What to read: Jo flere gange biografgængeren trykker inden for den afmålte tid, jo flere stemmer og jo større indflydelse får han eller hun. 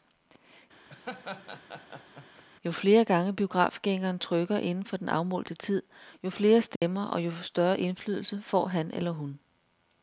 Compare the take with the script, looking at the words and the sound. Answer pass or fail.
fail